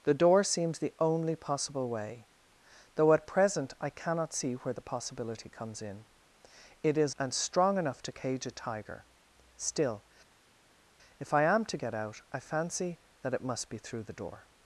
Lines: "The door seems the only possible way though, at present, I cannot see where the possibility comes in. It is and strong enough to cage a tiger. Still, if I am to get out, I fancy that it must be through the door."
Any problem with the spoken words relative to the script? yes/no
no